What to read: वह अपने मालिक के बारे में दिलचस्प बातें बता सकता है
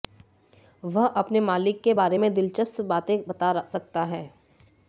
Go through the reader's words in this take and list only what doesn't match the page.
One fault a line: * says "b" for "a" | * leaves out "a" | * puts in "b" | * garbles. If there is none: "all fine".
all fine